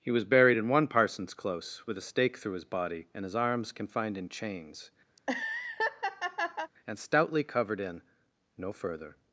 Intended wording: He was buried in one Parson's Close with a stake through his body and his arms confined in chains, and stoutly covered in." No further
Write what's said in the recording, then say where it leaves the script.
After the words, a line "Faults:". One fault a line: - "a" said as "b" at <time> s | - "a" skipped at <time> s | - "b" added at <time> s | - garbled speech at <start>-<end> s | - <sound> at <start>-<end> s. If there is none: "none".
He was buried in one Parson's Close with a stake through his body and his arms confined in chains, and stoutly covered in." No further
Faults:
- laugh at 5.2-6.7 s